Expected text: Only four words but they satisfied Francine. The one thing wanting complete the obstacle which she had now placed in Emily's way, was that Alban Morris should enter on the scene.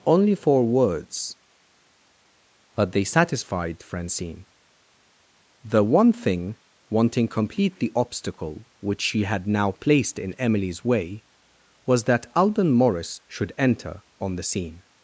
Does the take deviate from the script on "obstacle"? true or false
false